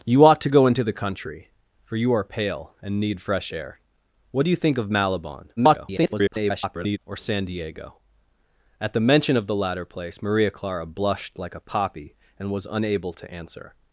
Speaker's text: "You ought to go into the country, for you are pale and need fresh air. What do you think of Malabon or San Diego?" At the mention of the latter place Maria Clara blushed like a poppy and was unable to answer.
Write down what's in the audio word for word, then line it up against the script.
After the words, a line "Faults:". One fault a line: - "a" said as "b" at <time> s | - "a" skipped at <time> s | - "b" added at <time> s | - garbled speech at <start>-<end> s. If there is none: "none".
"You ought to go into the country, for you are pale and need fresh air. What do you think of Malabon [garbled] or San Diego?" At the mention of the latter place Maria Clara blushed like a poppy and was unable to answer.
Faults:
- garbled speech at 5.6-7.0 s